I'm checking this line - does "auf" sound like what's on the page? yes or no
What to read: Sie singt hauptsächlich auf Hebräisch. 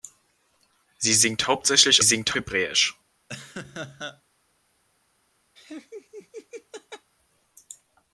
no